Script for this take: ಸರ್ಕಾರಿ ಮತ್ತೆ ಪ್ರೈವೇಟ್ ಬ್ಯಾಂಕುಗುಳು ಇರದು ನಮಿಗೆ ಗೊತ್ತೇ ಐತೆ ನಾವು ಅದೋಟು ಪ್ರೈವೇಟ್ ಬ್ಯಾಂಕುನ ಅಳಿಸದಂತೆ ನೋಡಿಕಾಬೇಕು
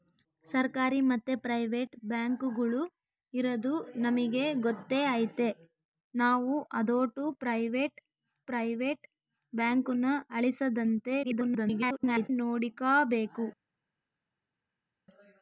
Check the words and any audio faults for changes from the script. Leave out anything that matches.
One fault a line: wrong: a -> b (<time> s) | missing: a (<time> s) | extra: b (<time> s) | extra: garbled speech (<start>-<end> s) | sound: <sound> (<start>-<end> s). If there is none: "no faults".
extra: ಪ್ರೈವೇಟ್ (8.5 s)
extra: garbled speech (11.2-12.3 s)